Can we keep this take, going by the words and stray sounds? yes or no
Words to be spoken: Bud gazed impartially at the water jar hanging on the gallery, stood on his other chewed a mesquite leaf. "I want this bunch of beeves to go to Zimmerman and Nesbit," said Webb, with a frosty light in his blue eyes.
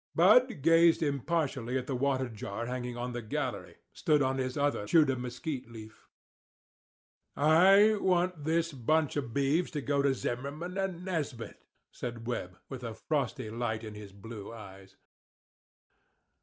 yes